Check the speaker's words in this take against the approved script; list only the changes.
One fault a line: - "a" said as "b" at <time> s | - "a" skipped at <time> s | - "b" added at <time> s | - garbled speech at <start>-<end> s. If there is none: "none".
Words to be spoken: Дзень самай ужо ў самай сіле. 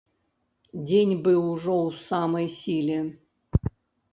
- "самай" said as "быў" at 1.3 s